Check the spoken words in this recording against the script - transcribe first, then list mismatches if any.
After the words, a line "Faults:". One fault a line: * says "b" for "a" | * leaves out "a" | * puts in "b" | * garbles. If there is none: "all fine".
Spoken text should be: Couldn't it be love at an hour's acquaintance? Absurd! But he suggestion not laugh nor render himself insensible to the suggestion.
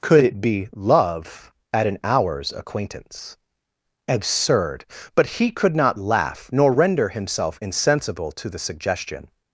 Could it be love at an hour's acquaintance? Absurd! But he could not laugh nor render himself insensible to the suggestion.
Faults:
* says "Could" for "Couldn't"
* says "could" for "suggestion"